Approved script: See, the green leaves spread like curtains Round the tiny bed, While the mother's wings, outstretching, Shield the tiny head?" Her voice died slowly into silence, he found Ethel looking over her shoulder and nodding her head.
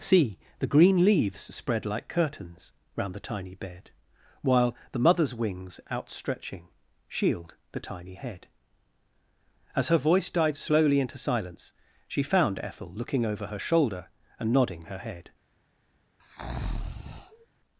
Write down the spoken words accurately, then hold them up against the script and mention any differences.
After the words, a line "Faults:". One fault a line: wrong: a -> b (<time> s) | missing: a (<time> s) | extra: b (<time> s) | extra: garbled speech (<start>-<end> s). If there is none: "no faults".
See, the green leaves spread like curtains Round the tiny bed, While the mother's wings, outstretching, Shield the tiny head?" As her voice died slowly into silence, she found Ethel looking over her shoulder and nodding her head.
Faults:
extra: As (9.8 s)
wrong: he -> she (12.1 s)